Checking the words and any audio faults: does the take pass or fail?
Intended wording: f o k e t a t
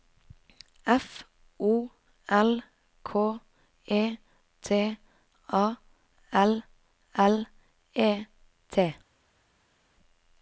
fail